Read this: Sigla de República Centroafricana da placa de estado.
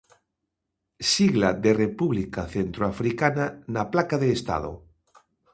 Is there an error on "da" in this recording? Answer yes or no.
yes